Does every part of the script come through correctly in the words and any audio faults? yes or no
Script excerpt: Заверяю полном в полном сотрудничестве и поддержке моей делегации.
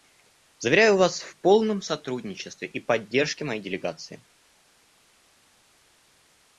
no